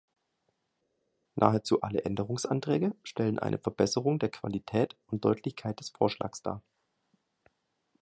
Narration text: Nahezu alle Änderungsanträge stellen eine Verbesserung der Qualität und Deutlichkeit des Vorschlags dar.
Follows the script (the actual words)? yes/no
yes